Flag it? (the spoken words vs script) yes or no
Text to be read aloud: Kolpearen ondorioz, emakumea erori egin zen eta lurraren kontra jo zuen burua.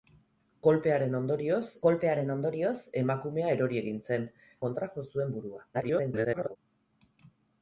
yes